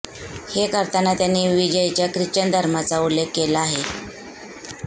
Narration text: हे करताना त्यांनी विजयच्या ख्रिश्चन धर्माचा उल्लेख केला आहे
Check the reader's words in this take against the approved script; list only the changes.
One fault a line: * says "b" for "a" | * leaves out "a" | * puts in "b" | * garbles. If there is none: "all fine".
all fine